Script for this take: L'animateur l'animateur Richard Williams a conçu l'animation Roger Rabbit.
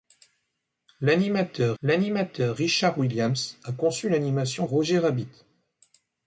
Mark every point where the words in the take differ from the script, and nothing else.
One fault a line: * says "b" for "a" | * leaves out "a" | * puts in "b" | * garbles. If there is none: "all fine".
all fine